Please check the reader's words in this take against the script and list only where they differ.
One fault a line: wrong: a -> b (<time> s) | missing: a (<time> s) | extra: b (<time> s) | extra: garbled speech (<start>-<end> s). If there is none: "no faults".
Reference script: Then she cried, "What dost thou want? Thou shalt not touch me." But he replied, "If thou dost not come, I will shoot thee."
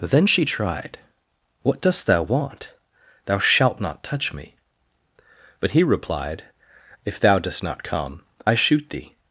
wrong: cried -> tried (0.4 s)
missing: will (8.5 s)